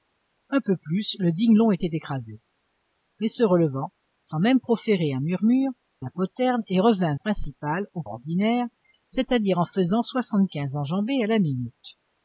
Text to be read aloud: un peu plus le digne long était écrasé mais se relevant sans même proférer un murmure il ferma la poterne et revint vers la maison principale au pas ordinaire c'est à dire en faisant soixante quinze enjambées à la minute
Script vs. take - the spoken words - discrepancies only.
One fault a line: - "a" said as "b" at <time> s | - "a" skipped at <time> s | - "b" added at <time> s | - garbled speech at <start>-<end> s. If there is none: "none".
- "il ferma" skipped at 5.7 s
- "vers la maison" skipped at 7.2 s
- "pas" skipped at 8.0 s